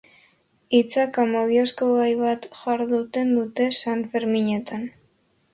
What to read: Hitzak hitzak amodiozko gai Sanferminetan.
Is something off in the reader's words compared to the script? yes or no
yes